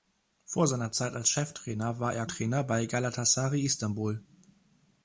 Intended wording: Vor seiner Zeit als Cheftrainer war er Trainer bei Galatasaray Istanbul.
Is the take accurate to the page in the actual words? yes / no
yes